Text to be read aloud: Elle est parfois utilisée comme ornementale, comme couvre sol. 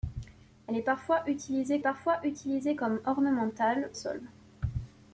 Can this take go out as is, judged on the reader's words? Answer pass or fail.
fail